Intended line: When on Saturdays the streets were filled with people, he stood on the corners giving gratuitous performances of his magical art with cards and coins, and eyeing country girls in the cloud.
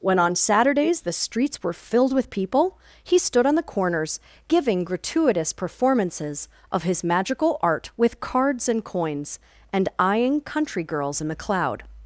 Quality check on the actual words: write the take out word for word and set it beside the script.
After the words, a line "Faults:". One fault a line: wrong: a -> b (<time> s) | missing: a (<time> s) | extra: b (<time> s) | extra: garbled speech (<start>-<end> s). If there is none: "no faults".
When on Saturdays the streets were filled with people, he stood on the corners giving gratuitous performances of his magical art with cards and coins, and eyeing country girls in the cloud.
Faults:
no faults